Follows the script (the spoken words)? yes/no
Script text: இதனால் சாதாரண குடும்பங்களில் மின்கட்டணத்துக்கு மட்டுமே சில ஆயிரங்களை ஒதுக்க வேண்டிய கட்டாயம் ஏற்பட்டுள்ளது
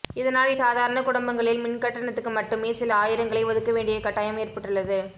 yes